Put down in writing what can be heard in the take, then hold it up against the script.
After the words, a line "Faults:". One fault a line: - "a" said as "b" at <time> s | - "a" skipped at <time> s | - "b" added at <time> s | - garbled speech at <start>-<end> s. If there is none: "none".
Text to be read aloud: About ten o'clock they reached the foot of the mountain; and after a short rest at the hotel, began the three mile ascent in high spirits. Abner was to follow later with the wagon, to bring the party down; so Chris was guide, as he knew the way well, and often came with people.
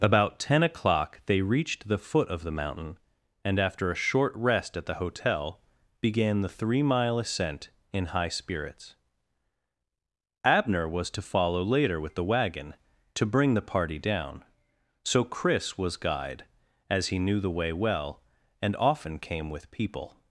About ten o'clock they reached the foot of the mountain; and after a short rest at the hotel, began the three mile ascent in high spirits. Abner was to follow later with the wagon, to bring the party down; so Chris was guide, as he knew the way well, and often came with people.
Faults:
none